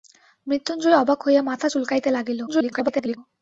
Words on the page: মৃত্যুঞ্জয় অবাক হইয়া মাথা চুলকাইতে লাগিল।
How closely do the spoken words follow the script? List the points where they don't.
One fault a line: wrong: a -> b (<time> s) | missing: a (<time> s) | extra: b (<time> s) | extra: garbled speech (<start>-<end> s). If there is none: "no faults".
extra: garbled speech (2.5-3.2 s)